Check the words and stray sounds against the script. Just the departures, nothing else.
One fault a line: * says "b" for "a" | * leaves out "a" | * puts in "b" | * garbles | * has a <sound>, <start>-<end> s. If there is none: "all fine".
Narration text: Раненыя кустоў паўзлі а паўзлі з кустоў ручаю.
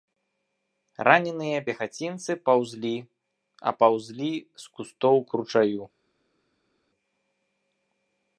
* says "пехацінцы" for "кустоў"
* puts in "к"